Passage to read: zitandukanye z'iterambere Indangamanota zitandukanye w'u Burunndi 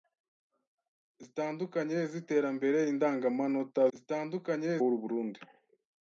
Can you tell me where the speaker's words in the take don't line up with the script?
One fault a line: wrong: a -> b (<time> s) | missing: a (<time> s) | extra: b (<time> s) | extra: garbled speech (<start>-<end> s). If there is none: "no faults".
no faults